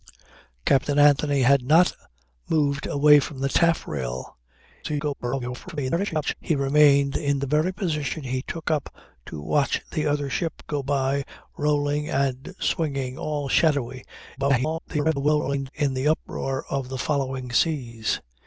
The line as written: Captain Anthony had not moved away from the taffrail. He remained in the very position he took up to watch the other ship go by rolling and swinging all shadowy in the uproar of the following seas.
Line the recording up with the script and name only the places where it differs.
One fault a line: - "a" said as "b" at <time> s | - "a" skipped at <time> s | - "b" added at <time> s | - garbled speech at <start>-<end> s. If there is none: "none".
- garbled speech at 4.8-6.3 s
- garbled speech at 14.4-15.7 s